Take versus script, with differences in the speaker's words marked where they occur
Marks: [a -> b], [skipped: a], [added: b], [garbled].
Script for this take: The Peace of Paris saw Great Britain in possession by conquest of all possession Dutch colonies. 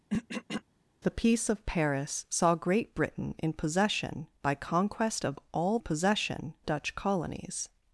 The Peace of Paris saw Great Britain in possession by conquest of all possession Dutch colonies.